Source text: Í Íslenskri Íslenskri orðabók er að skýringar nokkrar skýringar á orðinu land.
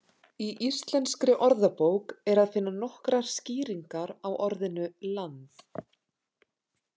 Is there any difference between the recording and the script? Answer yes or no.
yes